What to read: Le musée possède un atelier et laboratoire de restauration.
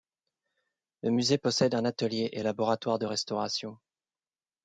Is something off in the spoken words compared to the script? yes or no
no